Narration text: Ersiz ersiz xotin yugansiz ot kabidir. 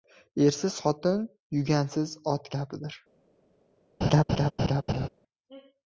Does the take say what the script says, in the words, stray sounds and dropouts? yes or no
no